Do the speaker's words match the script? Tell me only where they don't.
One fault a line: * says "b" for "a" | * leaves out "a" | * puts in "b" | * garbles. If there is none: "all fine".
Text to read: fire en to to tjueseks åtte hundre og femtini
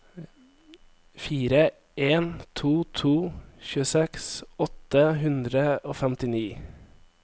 all fine